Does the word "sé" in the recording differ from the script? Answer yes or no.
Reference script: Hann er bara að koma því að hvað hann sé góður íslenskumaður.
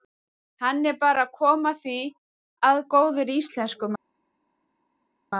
yes